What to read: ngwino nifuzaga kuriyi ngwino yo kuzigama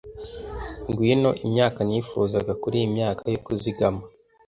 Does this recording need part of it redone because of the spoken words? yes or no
yes